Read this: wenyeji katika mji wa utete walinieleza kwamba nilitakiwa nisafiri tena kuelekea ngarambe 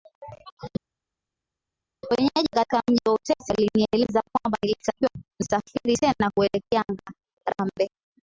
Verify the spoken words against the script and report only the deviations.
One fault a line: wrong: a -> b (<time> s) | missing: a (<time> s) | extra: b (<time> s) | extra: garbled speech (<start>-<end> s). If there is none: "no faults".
no faults